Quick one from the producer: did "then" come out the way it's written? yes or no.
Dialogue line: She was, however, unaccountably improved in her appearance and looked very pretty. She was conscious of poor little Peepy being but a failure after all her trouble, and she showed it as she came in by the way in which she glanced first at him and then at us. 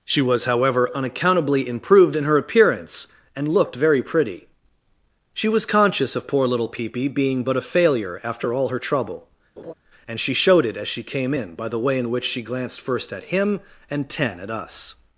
no